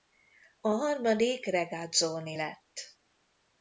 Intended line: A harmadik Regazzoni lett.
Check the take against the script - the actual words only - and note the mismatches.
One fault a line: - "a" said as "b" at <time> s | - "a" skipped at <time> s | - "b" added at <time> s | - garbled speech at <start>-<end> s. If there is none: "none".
none